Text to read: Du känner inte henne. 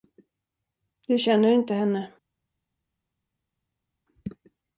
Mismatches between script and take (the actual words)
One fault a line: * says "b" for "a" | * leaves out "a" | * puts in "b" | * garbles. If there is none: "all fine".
all fine